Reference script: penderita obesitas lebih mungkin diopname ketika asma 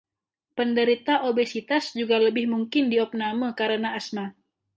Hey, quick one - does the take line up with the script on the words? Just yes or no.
no